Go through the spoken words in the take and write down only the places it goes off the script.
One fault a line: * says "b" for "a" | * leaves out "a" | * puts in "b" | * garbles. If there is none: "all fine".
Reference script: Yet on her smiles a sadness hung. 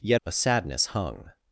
* leaves out "on her smiles"